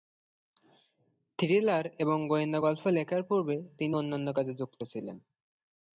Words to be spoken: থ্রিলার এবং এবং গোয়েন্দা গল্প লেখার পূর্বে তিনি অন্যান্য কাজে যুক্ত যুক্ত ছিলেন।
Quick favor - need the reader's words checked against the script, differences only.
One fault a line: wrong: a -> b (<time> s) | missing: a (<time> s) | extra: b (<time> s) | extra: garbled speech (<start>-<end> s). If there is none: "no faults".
missing: এবং (2.2 s)
missing: যুক্ত (4.8 s)